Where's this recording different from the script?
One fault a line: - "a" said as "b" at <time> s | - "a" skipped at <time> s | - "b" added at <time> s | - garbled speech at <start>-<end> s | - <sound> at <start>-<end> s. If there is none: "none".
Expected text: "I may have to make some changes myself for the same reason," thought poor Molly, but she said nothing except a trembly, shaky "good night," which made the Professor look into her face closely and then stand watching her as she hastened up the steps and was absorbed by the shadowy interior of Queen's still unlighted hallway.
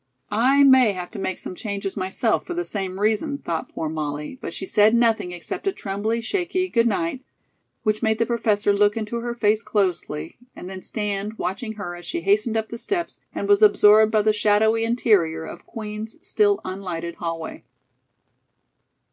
none